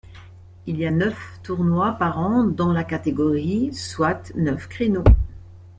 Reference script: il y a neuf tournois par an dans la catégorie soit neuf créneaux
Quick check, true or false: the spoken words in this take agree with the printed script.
true